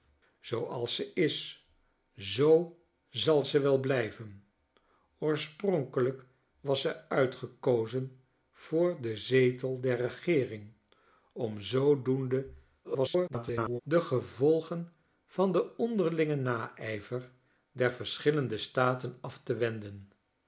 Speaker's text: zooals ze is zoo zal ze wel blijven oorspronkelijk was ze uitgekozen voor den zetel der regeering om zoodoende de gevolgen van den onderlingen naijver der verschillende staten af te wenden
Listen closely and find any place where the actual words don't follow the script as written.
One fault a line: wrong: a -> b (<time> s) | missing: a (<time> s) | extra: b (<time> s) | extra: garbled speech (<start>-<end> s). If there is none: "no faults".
extra: garbled speech (12.8-13.8 s)